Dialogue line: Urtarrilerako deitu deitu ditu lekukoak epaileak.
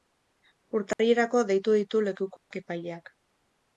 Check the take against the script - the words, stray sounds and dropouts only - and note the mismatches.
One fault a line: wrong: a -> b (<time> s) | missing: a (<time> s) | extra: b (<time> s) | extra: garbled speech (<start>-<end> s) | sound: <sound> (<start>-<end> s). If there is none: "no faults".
sound: dropout (0.9-1.0 s)
missing: deitu (1.8 s)
sound: dropout (2.4-2.5 s)